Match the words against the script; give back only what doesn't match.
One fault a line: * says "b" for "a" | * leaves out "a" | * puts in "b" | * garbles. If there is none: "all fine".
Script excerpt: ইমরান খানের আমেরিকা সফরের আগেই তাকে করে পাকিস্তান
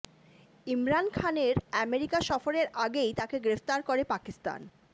* puts in "গ্রেফতার"